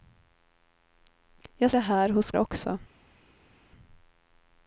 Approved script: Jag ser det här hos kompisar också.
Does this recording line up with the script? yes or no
no